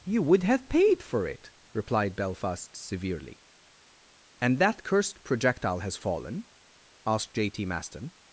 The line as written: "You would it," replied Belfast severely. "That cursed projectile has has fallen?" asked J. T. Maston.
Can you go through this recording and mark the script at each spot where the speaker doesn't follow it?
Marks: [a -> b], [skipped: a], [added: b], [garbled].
"You would [added: have paid for] it," replied Belfast severely. [added: And] "That cursed projectile has [skipped: has] fallen?" asked J. T. Maston.